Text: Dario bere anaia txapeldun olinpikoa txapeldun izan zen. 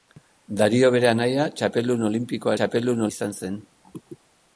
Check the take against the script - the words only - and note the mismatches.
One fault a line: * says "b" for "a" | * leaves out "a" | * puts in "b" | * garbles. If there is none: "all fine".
all fine